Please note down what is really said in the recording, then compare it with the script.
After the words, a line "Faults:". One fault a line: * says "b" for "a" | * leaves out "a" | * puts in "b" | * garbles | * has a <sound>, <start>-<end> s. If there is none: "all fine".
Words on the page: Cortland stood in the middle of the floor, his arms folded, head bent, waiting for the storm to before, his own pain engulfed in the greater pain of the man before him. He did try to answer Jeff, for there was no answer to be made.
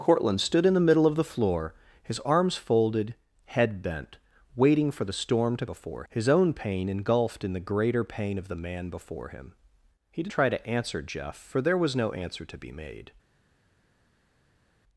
Cortland stood in the middle of the floor, his arms folded, head bent, waiting for the storm to before, his own pain engulfed in the greater pain of the man before him. He did try to answer Jeff, for there was no answer to be made.
Faults:
all fine